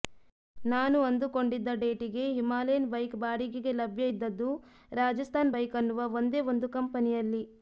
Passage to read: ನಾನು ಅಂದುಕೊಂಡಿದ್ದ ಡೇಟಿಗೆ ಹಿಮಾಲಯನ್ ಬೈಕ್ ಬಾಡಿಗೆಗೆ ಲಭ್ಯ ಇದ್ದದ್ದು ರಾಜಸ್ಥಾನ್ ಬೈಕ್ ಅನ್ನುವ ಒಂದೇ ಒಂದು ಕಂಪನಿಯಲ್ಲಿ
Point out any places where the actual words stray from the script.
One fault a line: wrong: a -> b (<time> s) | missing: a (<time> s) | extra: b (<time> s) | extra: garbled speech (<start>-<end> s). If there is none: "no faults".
no faults